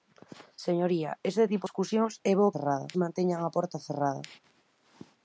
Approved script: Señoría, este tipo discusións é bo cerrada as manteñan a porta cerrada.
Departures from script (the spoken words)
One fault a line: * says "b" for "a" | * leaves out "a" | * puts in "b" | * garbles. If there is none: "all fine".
all fine